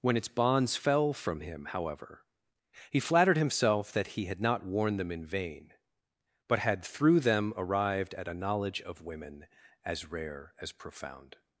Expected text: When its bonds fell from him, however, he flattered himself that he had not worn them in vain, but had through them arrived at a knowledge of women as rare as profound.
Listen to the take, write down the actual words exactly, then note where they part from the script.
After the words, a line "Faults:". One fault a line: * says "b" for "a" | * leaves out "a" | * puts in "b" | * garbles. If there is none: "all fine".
When its bonds fell from him, however, he flattered himself that he had not worn them in vain, but had through them arrived at a knowledge of women as rare as profound.
Faults:
all fine